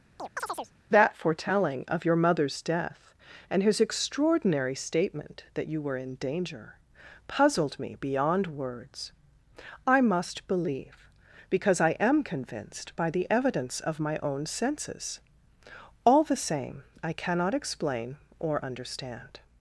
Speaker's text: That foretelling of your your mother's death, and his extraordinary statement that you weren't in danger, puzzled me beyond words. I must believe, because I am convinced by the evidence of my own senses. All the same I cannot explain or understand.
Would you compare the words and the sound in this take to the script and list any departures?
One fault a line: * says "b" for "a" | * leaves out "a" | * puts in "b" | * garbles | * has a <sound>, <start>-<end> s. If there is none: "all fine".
* has a chirp, 0.2-0.7 s
* leaves out "your"
* says "were" for "weren't"